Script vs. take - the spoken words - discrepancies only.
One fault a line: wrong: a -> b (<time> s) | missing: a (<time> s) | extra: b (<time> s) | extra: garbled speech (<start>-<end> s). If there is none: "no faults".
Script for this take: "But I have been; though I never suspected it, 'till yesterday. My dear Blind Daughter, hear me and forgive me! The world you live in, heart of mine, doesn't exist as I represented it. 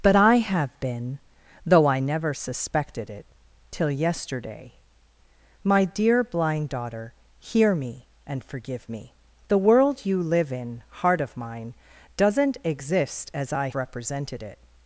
no faults